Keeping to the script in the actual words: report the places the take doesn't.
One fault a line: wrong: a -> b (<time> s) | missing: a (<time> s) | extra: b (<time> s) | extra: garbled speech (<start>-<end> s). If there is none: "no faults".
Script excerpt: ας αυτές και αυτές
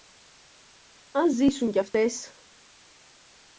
wrong: αυτές -> ζήσουν (1.3 s)